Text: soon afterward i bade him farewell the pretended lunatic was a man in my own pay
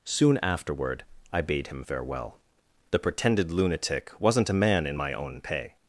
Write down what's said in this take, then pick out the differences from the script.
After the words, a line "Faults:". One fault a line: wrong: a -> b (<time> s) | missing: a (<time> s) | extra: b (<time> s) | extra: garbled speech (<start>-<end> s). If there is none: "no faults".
soon afterward i bade him farewell the pretended lunatic wasn't a man in my own pay
Faults:
wrong: was -> wasn't (4.2 s)